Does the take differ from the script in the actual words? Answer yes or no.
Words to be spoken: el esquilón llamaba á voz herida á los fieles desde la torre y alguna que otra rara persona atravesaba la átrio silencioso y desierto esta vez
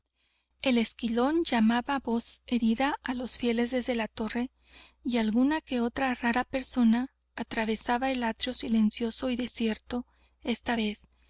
yes